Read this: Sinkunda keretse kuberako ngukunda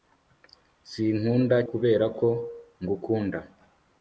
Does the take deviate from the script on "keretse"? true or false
true